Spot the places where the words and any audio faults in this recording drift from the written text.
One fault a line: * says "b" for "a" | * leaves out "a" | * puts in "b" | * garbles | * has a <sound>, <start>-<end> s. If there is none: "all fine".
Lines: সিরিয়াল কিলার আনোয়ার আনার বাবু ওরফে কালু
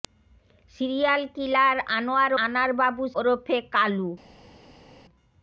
all fine